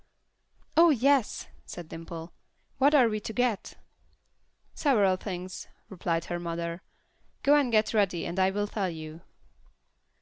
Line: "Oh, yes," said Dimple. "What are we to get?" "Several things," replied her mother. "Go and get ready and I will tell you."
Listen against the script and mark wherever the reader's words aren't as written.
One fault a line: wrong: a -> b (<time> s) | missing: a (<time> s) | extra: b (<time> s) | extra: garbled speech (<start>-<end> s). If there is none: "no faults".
no faults